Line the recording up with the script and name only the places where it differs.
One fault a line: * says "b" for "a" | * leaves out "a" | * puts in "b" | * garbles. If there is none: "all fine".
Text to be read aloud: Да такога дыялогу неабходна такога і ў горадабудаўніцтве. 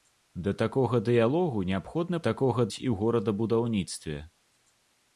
all fine